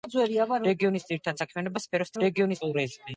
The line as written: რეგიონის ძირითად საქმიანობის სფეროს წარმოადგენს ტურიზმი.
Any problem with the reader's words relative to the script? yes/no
yes